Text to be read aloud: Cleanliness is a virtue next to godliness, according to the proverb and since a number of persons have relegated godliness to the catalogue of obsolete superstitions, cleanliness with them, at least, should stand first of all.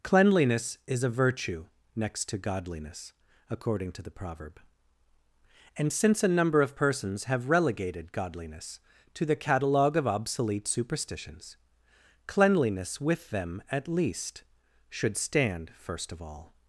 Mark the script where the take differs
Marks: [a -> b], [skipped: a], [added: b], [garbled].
Cleanliness is a virtue next to godliness, according to the proverb and since a number of persons have relegated godliness to the catalogue of obsolete superstitions, cleanliness with them, at least, should stand first of all.